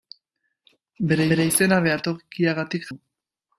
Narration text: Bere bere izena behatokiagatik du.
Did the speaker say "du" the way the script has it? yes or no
yes